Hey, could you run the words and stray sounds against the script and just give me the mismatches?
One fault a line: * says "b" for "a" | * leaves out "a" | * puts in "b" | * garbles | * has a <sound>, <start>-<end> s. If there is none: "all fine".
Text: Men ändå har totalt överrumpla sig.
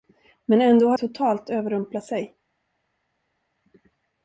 all fine